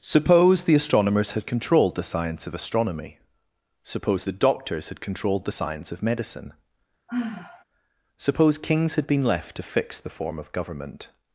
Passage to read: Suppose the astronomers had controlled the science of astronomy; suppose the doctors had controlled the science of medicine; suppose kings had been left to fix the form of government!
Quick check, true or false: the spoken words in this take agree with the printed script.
true